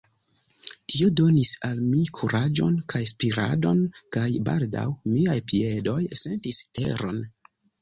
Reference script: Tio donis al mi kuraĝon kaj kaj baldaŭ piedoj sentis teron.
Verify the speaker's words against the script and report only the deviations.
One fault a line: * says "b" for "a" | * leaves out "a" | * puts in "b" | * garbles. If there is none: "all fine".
* puts in "spiradon"
* puts in "miaj"